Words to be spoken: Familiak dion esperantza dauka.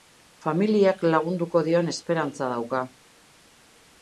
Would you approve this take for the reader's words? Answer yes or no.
no